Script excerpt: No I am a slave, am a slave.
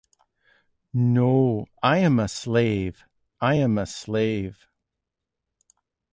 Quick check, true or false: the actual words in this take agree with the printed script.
false